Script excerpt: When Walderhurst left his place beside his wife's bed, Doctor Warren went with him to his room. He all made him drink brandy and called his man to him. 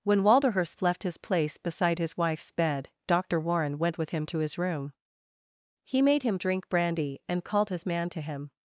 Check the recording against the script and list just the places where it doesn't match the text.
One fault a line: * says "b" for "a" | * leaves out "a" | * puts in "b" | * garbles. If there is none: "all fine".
* leaves out "all"